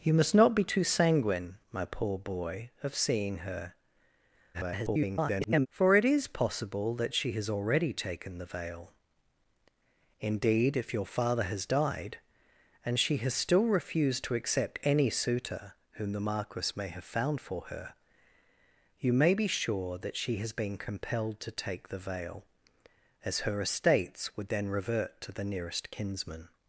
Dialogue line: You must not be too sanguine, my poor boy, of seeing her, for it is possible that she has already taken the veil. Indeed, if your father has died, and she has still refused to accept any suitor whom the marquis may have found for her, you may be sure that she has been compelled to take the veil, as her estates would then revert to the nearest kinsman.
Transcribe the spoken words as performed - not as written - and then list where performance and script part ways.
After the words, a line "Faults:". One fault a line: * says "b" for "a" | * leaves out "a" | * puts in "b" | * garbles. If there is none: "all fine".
You must not be too sanguine, my poor boy, of seeing her, [garbled] for it is possible that she has already taken the veil. Indeed, if your father has died, and she has still refused to accept any suitor whom the marquis may have found for her, you may be sure that she has been compelled to take the veil, as her estates would then revert to the nearest kinsman.
Faults:
* garbles